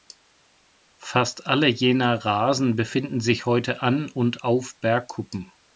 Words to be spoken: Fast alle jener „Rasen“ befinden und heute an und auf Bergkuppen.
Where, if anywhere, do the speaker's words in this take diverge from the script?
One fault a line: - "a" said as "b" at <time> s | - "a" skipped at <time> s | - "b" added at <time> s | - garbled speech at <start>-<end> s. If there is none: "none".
- "und" said as "sich" at 3.2 s